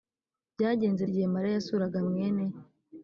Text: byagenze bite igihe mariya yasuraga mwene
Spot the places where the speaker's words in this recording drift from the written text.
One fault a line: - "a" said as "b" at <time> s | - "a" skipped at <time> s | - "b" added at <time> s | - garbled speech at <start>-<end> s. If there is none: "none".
- "bite" skipped at 1.0 s